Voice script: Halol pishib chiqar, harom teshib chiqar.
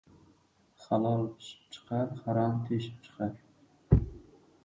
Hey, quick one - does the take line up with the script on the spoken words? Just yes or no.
yes